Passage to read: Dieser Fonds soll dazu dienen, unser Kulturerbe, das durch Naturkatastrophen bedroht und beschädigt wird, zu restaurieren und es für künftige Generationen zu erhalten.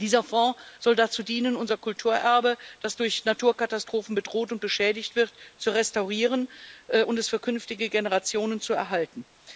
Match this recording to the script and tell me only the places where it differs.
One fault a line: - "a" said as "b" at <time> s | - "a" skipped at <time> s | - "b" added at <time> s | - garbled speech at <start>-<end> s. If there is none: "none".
none